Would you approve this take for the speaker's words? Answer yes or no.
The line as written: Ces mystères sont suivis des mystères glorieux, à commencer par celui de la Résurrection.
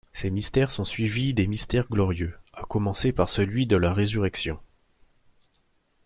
yes